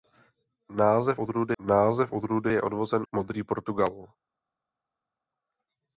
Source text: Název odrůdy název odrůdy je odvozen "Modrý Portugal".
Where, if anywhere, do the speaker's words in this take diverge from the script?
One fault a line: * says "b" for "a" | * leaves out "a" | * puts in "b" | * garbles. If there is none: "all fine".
all fine